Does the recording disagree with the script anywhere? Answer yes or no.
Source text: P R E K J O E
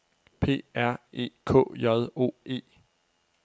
no